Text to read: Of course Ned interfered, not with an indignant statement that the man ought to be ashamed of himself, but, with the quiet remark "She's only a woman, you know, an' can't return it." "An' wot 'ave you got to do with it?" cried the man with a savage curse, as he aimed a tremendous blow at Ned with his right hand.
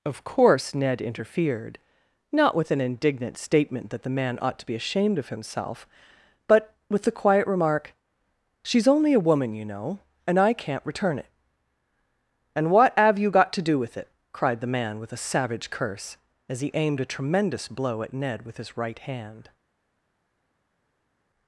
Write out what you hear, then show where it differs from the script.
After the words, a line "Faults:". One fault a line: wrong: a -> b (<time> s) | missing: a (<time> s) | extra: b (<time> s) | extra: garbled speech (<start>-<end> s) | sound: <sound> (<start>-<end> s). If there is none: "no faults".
Of course Ned interfered, not with an indignant statement that the man ought to be ashamed of himself, but, with the quiet remark "She's only a woman, you know, and I' can't return it." "And what have you got to do with it?" cried the man with a savage curse, as he aimed a tremendous blow at Ned with his right hand.
Faults:
wrong: an -> and I (10.2 s)
wrong: An wot ave -> And what have (12.6 s)